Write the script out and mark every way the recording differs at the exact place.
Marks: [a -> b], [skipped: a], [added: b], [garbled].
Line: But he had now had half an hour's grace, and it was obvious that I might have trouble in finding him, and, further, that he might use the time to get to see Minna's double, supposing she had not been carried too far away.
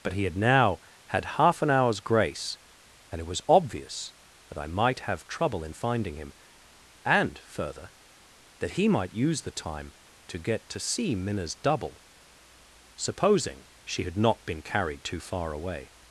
But he had now had half an hour's grace, and it was obvious that I might have trouble in finding him, and, further, that he might use the time to get to see Minna's double, supposing she had not been carried too far away.